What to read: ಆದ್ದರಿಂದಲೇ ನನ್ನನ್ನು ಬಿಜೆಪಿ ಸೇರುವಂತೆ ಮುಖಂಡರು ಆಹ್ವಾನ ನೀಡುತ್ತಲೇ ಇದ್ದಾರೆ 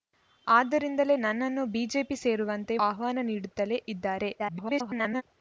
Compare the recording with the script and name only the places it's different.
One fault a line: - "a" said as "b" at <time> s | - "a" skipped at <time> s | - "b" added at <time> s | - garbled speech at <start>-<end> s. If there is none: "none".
- "ಮುಖಂಡರು" skipped at 2.8 s
- garbled speech at 4.4-5.2 s